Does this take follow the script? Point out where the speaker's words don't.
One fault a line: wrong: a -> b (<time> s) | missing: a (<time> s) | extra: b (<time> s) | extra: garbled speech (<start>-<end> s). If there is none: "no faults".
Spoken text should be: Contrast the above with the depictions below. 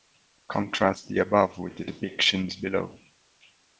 no faults